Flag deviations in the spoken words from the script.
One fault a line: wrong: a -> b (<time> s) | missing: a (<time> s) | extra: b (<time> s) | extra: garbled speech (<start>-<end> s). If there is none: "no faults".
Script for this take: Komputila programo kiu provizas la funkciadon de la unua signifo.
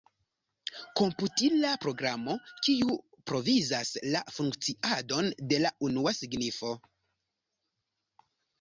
no faults